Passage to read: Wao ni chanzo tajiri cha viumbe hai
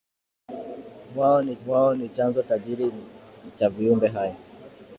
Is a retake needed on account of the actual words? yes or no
yes